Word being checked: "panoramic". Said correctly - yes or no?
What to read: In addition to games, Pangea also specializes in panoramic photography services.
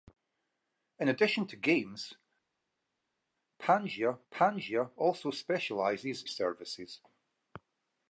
no